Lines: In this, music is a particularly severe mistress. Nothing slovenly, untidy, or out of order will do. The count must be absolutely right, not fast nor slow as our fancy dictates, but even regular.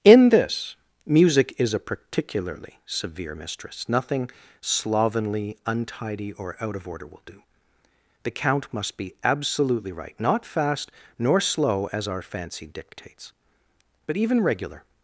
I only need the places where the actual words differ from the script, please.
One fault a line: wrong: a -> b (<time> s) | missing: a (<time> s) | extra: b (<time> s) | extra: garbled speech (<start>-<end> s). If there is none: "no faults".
no faults